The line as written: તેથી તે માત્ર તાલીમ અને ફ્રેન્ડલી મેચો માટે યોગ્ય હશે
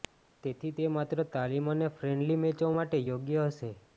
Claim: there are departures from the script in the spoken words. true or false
false